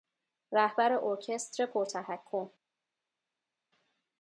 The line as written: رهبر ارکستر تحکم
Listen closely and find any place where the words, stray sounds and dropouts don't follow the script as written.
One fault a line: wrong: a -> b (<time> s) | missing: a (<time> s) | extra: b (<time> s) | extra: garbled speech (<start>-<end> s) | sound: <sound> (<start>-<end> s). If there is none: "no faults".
extra: پر (1.6 s)